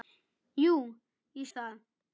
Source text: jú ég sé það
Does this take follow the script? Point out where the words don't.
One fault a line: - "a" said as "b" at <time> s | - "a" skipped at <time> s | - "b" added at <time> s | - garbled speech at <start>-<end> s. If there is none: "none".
- "sé" skipped at 1.5 s